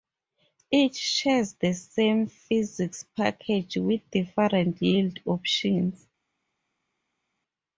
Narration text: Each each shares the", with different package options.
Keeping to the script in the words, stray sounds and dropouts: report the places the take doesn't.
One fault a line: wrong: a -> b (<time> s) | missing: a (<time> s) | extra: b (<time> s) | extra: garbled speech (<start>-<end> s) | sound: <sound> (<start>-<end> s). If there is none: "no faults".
missing: each (0.9 s)
extra: same physics package (1.7 s)
wrong: package -> yield (4.8 s)